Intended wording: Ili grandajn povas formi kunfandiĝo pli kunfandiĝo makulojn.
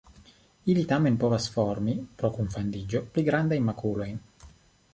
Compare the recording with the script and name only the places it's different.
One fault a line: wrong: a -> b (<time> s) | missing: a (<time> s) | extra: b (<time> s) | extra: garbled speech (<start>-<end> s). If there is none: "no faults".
wrong: grandajn -> tamen (0.9 s)
extra: pro (2.2 s)
wrong: kunfandiĝo -> grandajn (3.3 s)